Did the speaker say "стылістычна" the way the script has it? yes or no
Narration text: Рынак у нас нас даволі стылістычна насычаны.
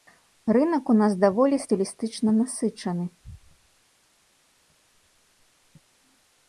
yes